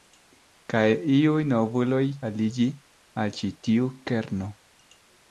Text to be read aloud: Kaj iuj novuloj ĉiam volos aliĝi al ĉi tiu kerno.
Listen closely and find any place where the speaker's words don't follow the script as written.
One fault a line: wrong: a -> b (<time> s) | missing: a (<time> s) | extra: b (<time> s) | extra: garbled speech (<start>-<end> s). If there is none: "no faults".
missing: ĉiam volos (2.0 s)